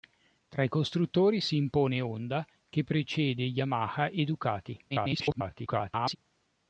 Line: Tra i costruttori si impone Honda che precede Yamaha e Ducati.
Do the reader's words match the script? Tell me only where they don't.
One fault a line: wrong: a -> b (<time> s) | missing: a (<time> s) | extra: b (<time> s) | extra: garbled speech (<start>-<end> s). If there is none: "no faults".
extra: garbled speech (4.9-6.2 s)